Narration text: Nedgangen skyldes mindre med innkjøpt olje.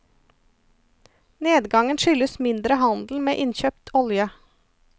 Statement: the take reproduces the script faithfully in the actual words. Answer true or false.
false